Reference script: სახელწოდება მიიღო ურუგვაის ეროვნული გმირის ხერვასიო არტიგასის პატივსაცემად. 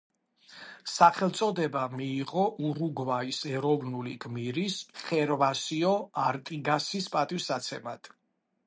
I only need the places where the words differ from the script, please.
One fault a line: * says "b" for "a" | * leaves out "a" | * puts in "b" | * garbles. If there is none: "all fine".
all fine